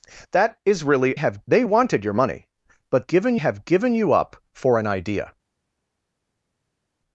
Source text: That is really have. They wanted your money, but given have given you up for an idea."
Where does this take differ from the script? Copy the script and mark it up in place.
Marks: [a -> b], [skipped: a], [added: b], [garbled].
That is really have. They wanted your money, but given have given you up for an idea."